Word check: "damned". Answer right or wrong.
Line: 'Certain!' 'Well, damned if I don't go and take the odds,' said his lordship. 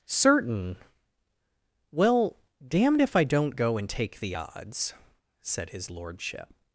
right